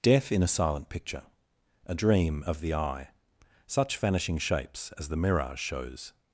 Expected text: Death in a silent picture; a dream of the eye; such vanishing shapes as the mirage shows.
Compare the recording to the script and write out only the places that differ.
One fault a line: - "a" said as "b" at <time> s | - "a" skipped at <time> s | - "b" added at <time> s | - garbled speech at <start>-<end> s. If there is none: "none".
none